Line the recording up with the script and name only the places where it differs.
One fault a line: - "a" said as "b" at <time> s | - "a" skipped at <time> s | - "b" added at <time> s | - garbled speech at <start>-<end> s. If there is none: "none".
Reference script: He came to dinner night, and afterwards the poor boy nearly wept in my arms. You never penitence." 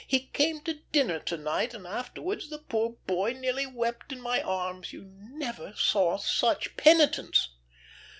- "to" added at 1.2 s
- "saw such" added at 5.8 s